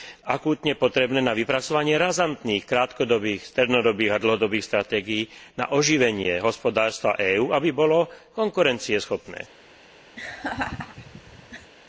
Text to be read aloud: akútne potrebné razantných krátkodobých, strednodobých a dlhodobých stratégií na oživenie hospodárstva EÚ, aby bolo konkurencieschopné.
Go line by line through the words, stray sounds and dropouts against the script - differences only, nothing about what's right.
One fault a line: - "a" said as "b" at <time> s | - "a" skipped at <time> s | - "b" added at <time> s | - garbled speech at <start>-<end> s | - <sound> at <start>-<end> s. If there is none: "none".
- "na vypracovanie" added at 1.2 s
- laugh at 10.2-11.7 s